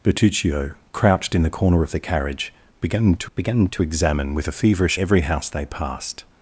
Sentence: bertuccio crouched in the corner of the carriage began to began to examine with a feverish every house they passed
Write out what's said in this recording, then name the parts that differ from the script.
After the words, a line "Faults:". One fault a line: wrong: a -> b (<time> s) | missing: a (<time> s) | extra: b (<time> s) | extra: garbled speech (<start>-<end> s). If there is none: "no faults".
bertuccio crouched in the corner of the carriage began to began to examine with a feverish every house they passed
Faults:
no faults